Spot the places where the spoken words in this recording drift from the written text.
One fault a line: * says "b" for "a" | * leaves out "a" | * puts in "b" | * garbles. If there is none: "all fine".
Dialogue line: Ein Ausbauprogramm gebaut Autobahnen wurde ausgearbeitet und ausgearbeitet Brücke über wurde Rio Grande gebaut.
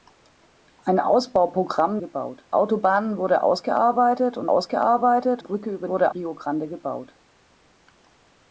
all fine